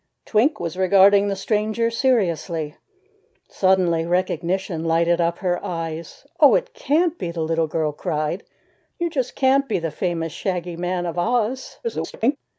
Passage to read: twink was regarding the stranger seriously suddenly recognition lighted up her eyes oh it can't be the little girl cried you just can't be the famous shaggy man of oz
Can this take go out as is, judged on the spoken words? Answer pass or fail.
fail